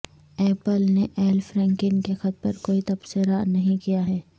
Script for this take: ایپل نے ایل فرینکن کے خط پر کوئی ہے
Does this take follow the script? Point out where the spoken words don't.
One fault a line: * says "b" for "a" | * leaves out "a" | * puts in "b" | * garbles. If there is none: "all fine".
* puts in "تبصرہ نہیں کیا"